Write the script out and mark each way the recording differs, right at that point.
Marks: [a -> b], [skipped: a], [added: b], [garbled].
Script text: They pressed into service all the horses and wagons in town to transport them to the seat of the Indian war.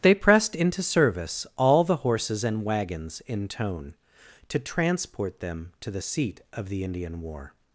They pressed into service all the horses and wagons in [town -> tone] to transport them to the seat of the Indian war.